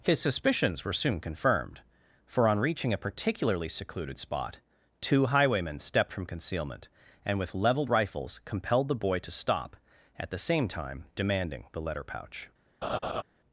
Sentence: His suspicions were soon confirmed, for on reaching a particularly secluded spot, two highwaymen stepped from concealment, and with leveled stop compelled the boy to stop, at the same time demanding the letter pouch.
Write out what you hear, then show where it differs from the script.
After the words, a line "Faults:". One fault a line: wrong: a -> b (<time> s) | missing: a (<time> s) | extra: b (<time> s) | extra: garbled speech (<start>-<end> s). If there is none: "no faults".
His suspicions were soon confirmed, for on reaching a particularly secluded spot, two highwaymen stepped from concealment, and with leveled rifles compelled the boy to stop, at the same time demanding the letter pouch.
Faults:
wrong: stop -> rifles (7.9 s)